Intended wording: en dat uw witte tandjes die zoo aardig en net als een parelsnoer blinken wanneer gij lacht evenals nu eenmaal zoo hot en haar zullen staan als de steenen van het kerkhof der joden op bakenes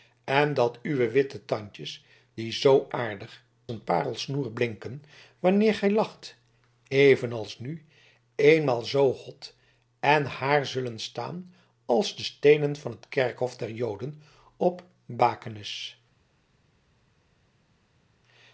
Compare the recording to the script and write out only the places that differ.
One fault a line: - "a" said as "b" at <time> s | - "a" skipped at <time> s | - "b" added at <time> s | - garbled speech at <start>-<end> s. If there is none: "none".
- "en net als" skipped at 3.5 s